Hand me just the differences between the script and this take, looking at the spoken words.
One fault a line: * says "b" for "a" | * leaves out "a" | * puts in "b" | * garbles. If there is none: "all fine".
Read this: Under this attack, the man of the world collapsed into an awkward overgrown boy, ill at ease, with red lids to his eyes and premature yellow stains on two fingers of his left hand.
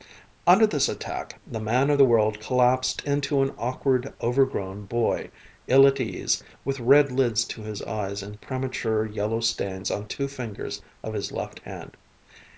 all fine